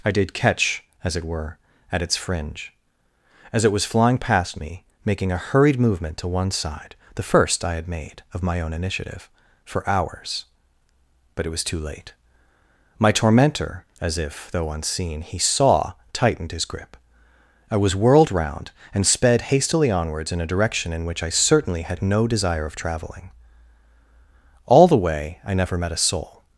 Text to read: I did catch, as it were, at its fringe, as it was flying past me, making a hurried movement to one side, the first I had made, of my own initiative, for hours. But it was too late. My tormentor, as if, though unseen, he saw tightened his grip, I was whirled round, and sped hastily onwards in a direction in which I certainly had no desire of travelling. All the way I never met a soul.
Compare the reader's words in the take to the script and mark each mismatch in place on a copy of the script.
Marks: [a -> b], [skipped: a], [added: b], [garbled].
I did catch, as it were, at its fringe, as it was flying past me, making a hurried movement to one side, the first I had made, of my own initiative, for hours. But it was too late. My tormentor, as if, though unseen, he saw tightened his grip, I was whirled round, and sped hastily onwards in a direction in which I certainly had no desire of travelling. All the way I never met a soul.